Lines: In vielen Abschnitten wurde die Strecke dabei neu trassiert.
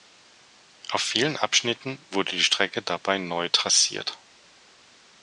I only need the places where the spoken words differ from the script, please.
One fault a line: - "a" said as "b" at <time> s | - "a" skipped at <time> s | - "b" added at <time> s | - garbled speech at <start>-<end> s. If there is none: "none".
- "In" said as "Auf" at 0.9 s